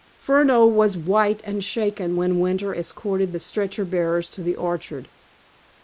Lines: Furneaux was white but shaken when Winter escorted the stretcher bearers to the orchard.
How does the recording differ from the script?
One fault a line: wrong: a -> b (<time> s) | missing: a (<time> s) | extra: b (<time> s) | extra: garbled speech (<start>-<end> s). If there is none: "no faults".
wrong: but -> and (1.4 s)